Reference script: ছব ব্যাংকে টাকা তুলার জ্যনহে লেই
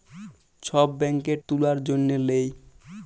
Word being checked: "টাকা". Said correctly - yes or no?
no